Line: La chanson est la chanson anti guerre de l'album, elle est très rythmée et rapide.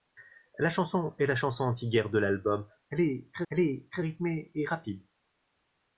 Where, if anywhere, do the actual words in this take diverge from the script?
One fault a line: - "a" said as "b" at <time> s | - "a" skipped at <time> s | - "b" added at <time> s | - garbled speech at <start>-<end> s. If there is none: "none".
- "elle est très" added at 3.5 s